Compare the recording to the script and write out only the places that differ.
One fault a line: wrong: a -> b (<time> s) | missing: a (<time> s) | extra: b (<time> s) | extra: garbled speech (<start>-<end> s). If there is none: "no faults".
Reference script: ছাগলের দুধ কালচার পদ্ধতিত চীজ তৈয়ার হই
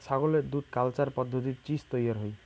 no faults